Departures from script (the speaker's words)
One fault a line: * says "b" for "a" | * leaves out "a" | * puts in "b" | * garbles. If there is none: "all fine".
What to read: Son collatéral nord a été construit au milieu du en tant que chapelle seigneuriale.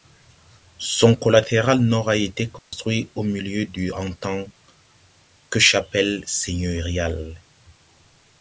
all fine